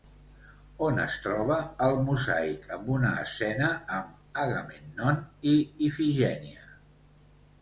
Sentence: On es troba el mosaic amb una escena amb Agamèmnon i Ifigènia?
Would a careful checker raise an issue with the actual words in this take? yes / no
no